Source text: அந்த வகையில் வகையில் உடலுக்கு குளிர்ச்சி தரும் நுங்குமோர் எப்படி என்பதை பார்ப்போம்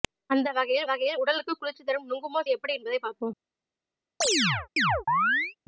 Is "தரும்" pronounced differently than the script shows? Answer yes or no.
no